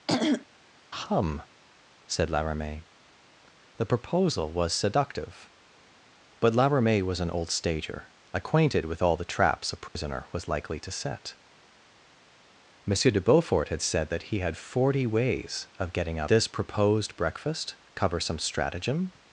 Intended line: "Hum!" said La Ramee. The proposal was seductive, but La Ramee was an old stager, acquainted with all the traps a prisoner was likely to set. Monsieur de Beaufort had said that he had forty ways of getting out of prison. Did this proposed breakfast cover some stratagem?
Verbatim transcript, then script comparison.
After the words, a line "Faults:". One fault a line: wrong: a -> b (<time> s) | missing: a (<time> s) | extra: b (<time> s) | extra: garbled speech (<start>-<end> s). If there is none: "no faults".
"Hum!" said La Ramee. The proposal was seductive, but La Ramee was an old stager, acquainted with all the traps a prisoner was likely to set. Monsieur de Beaufort had said that he had forty ways of getting out this proposed breakfast cover some stratagem?
Faults:
missing: of prison Did (16.3 s)